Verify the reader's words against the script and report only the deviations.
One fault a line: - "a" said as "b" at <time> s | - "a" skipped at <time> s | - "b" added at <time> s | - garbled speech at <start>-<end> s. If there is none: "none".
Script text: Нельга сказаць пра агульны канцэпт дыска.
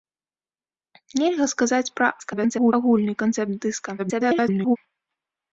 - garbled speech at 2.2-2.7 s
- garbled speech at 4.0-4.8 s